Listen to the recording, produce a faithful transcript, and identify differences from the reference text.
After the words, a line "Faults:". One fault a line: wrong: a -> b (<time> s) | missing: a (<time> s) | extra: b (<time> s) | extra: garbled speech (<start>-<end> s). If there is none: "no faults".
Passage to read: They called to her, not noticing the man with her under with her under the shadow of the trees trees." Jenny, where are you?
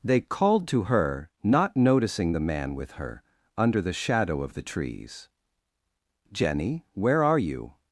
They called to her, not noticing the man with her under the shadow of the trees." Jenny, where are you?
Faults:
missing: with her under (3.8 s)
missing: trees (5.3 s)